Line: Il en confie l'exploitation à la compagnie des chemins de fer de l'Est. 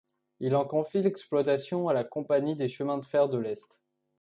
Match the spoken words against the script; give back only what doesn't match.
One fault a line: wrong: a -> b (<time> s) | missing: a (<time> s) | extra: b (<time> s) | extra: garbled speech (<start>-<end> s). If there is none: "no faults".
no faults